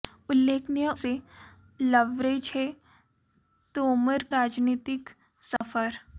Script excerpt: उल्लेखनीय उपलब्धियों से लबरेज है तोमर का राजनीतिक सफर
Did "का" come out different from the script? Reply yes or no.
yes